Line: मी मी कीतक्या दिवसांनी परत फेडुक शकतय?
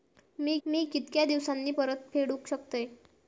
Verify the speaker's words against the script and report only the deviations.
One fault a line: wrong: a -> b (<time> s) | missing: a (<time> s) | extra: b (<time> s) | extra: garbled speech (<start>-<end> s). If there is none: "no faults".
no faults